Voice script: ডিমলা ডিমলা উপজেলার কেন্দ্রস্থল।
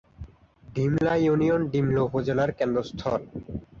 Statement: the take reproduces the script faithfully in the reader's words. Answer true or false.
false